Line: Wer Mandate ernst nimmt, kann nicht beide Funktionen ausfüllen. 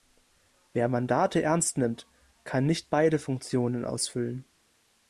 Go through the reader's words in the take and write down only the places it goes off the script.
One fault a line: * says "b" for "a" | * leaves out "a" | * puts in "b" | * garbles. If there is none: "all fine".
all fine